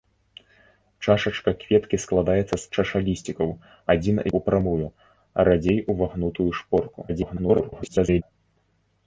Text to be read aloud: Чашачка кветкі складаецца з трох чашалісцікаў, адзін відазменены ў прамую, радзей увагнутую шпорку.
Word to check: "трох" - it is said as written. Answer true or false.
false